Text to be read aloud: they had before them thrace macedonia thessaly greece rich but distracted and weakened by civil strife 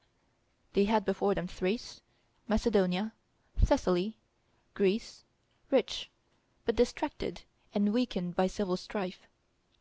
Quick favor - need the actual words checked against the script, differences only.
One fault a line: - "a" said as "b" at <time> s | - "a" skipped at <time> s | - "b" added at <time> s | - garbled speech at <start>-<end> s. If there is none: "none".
none